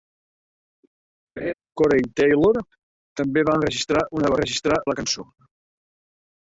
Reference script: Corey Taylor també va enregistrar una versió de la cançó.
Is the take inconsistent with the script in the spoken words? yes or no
yes